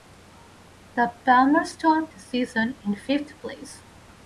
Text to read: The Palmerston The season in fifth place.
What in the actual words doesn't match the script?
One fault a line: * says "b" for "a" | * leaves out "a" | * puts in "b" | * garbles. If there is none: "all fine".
all fine